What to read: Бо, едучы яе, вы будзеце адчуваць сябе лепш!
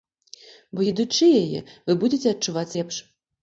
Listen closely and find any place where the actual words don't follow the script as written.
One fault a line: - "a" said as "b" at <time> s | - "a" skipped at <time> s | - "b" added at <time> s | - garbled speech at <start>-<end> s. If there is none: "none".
- "сябе" skipped at 2.7 s